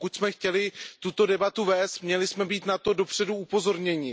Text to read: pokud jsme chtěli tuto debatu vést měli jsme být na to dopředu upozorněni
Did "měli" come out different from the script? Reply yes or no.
no